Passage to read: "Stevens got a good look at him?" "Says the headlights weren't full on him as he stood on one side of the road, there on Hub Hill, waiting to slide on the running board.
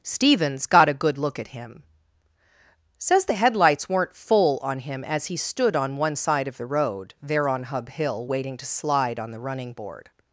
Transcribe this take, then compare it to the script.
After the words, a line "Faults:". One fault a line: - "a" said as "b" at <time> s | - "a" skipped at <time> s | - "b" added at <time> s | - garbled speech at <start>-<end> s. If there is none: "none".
"Stevens got a good look at him?" "Says the headlights weren't full on him as he stood on one side of the road, there on Hub Hill, waiting to slide on the running board.
Faults:
none